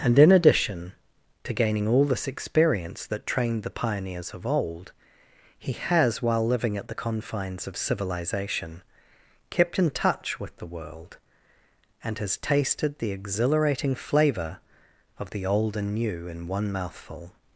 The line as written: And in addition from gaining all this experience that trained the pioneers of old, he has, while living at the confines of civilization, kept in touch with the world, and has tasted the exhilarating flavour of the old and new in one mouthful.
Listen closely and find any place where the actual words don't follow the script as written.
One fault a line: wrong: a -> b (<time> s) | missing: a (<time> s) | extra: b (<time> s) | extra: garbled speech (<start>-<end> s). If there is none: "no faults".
wrong: from -> to (1.4 s)